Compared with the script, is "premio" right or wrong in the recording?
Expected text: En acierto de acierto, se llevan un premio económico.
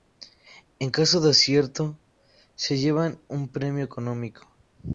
right